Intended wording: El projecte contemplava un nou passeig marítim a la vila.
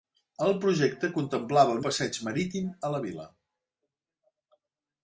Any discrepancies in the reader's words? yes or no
yes